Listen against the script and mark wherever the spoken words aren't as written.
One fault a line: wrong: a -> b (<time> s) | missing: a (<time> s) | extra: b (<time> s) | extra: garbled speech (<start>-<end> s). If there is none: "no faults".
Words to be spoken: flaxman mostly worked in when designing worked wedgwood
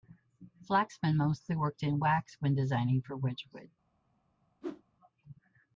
extra: wax (2.0 s)
wrong: worked -> for (3.0 s)